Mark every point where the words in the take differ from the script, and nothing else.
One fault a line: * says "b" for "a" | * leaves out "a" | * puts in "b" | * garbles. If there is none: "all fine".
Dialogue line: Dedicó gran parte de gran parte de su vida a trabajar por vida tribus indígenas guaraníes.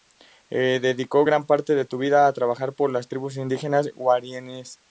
* leaves out "gran parte de"
* says "las" for "vida"